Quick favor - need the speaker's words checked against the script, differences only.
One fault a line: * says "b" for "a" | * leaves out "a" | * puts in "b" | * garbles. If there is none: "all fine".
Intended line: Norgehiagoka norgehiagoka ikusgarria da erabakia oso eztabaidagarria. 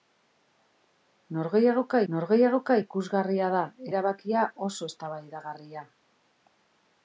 all fine